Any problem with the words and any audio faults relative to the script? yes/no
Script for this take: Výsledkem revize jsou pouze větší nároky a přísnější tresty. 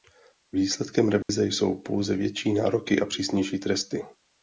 yes